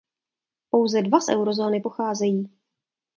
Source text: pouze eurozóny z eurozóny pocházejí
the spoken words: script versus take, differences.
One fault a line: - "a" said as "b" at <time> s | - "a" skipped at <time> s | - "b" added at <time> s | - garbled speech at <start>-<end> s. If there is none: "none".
- "eurozóny" said as "dva" at 1.0 s